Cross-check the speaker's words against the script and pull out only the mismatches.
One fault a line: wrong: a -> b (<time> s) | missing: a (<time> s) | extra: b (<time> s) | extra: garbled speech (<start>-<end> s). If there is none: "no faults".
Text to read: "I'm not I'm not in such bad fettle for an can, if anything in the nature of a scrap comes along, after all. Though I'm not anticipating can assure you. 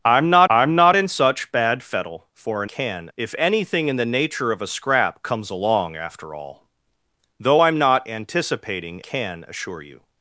no faults